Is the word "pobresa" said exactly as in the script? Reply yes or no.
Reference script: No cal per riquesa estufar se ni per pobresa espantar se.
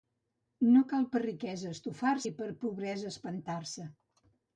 yes